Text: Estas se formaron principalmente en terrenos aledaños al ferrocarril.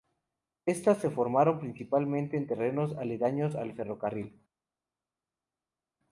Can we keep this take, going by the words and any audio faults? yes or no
yes